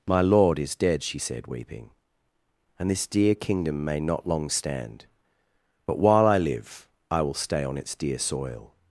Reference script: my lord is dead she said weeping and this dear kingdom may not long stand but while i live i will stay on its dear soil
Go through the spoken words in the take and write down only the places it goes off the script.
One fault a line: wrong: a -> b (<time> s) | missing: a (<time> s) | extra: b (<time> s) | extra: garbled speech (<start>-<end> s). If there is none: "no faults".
no faults